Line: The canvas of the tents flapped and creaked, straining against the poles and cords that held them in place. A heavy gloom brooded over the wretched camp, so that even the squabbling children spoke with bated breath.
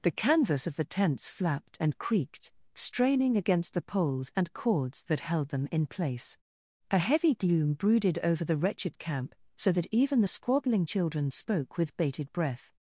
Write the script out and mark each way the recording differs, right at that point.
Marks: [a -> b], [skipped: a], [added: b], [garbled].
The canvas of the tents flapped and creaked, straining against the poles and cords that held them in place. A heavy gloom brooded over the wretched camp, so that even the squabbling children spoke with bated breath.